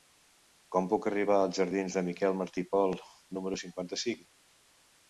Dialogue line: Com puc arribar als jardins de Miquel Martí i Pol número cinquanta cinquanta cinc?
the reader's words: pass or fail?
fail